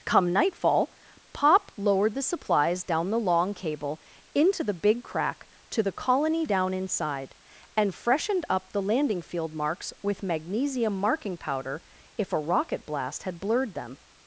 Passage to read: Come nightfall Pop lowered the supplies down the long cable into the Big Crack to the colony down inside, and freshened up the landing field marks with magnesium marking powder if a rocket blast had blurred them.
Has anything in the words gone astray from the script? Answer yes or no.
no